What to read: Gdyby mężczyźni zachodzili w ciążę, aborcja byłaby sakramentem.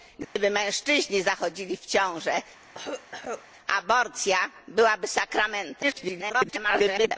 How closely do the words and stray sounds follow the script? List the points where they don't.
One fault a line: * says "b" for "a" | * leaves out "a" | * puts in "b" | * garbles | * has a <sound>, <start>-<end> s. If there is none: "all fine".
* has a dropout, 0.2-0.4 s
* has a cough, 2.6-3.5 s
* garbles